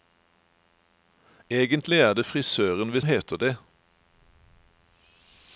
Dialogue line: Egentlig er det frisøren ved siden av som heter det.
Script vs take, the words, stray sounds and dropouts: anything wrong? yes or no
yes